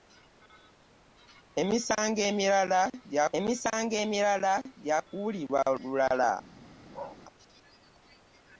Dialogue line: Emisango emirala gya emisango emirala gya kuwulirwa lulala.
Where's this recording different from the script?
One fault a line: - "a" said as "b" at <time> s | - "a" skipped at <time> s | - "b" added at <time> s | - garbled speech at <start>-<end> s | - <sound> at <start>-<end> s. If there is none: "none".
- bark at 6.9-7.2 s